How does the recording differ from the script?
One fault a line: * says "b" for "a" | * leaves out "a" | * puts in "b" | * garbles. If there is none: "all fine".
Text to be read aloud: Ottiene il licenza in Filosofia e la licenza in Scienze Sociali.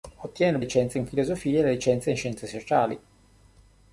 all fine